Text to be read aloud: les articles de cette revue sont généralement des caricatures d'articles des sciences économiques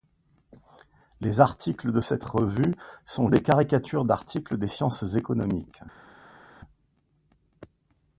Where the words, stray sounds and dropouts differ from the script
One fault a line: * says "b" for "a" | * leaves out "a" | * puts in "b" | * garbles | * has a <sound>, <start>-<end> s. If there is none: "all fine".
* leaves out "généralement"